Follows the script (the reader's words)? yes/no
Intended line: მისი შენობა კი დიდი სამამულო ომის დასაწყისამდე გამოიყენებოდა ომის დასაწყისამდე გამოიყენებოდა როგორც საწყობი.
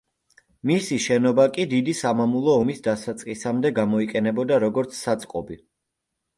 no